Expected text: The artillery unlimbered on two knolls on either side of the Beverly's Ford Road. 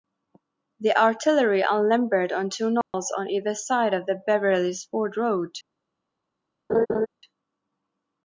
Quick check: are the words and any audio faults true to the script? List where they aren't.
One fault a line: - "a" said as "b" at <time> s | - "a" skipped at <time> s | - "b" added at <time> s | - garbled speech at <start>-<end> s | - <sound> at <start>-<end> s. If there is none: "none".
- dropout at 2.8-2.9 s
- laugh at 6.7-7.1 s